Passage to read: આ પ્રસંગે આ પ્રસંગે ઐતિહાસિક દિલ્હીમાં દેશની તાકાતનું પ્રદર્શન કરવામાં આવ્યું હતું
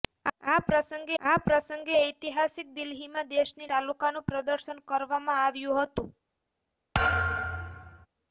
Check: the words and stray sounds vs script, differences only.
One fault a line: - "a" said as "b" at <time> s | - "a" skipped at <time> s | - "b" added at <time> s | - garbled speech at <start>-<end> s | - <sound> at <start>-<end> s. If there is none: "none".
- thud at 6.9-8.1 s